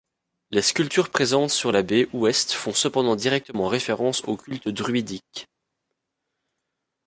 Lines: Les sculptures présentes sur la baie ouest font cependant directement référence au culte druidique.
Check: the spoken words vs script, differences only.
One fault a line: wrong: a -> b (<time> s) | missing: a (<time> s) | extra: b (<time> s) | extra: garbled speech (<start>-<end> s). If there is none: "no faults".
no faults